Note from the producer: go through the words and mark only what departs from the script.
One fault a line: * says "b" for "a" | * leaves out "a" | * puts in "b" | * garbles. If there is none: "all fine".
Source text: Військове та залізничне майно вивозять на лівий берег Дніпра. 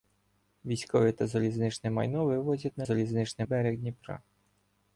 * says "залізничне" for "лівий"